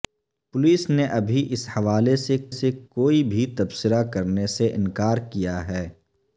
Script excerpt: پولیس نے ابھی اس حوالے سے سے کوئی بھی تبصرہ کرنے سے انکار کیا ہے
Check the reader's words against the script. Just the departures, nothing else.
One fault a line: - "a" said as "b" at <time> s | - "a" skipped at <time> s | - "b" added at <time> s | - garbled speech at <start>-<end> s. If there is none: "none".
none